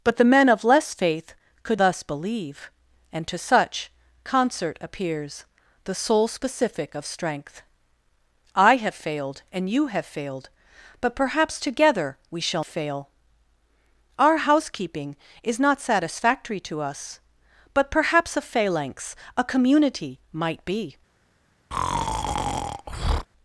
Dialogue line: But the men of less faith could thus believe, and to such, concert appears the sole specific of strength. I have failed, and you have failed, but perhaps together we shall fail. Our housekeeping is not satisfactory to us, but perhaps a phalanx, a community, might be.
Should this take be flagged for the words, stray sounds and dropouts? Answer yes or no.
yes